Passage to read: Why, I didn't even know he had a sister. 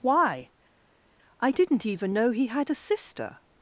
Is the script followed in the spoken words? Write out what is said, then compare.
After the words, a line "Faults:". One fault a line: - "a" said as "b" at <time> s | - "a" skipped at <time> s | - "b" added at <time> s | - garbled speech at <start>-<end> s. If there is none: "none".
Why, I didn't even know he had a sister.
Faults:
none